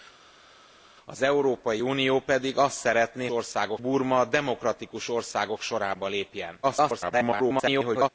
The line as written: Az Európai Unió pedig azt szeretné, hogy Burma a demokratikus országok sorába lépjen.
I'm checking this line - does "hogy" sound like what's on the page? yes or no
no